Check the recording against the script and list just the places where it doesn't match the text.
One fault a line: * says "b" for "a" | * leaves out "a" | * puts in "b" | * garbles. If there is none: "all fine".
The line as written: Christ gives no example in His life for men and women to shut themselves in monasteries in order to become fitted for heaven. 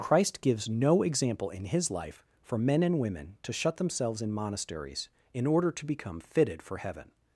all fine